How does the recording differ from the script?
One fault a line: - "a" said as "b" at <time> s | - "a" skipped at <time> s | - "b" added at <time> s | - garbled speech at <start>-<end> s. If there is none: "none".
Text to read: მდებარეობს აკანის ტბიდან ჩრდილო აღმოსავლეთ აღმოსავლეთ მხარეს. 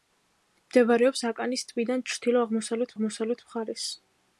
none